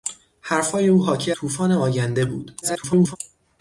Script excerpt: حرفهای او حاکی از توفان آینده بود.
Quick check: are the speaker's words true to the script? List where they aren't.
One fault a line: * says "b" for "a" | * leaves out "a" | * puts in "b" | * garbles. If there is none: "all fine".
* leaves out "از"
* garbles